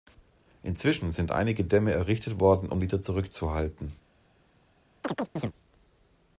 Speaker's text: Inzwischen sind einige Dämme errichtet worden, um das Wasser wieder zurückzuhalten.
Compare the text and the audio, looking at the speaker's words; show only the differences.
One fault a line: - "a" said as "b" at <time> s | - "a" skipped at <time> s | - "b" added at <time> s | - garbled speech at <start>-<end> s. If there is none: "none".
- "das Wasser" skipped at 2.8 s